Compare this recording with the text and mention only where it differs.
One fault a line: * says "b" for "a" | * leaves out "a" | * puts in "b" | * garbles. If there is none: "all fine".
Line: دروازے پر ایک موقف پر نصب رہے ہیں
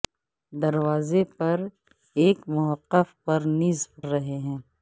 all fine